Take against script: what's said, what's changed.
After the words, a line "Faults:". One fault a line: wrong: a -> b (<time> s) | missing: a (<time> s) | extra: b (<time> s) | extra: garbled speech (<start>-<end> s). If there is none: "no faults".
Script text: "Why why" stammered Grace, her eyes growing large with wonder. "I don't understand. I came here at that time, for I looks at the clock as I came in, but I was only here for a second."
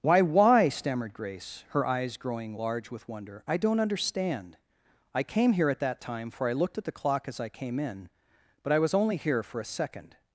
"Why why" stammered Grace, her eyes growing large with wonder. "I don't understand. I came here at that time, for I looked at the clock as I came in, but I was only here for a second."
Faults:
wrong: looks -> looked (6.5 s)